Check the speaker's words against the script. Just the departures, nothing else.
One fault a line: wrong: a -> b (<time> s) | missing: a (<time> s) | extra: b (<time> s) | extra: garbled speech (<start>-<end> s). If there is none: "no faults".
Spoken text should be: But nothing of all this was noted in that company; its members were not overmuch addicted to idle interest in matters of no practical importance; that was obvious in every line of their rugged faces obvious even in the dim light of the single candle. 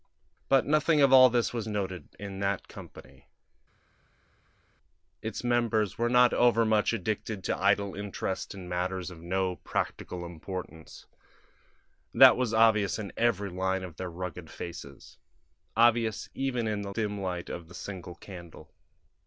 no faults